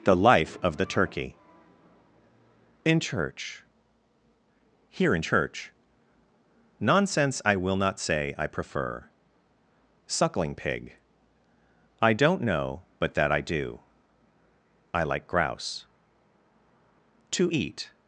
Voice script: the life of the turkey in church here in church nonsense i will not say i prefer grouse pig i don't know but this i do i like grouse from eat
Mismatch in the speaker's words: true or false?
true